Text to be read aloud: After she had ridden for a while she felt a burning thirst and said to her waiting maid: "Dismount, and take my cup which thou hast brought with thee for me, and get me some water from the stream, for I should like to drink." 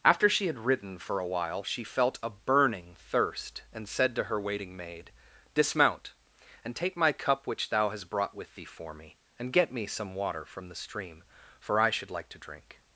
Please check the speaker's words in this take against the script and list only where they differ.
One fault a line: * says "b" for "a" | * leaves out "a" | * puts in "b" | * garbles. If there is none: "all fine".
all fine